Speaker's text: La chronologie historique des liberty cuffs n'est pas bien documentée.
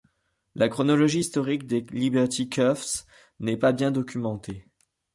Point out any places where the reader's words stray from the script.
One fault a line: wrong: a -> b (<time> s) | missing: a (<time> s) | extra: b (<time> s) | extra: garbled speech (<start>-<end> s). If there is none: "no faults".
no faults